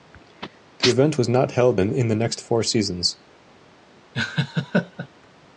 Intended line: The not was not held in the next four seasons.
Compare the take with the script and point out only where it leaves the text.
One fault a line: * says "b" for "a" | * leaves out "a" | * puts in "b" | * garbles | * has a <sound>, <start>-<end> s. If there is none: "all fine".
* says "event" for "not"
* has a laugh, 4.1-5.1 s